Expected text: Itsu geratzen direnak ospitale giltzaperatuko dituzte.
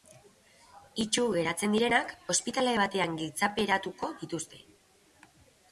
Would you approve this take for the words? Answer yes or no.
no